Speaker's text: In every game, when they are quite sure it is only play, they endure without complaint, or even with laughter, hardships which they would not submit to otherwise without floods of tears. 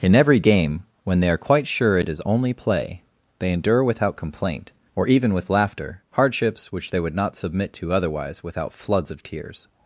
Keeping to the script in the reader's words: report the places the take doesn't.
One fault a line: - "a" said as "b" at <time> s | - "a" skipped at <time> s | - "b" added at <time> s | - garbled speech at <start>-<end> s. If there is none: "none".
none